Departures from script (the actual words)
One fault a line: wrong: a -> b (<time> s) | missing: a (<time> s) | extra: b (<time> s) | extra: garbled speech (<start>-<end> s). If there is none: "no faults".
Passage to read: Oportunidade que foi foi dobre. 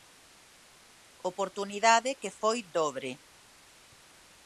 missing: foi (2.6 s)